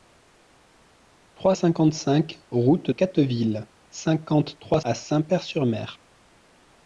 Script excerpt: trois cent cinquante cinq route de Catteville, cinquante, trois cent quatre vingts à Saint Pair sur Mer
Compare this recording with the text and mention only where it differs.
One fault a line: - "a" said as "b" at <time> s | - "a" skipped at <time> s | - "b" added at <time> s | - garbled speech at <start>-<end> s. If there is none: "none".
- "cent" skipped at 1.5 s
- "de" skipped at 2.9 s
- "cent quatre vingts" skipped at 4.8 s